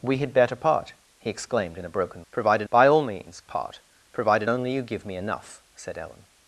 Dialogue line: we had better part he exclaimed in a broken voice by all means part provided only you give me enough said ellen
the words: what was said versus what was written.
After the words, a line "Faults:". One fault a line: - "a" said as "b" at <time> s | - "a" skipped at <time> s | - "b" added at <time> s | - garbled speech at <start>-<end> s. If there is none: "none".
we had better part he exclaimed in a broken provided by all means part provided only you give me enough said ellen
Faults:
- "voice" said as "provided" at 2.3 s